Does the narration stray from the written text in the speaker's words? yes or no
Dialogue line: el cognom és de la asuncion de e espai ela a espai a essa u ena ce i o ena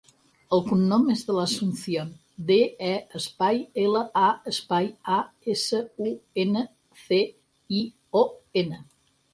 no